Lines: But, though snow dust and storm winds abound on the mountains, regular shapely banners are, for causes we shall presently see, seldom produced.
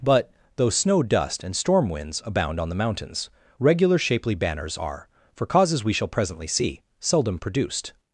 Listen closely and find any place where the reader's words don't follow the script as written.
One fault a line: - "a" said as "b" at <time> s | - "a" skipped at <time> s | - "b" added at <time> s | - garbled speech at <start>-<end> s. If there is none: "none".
none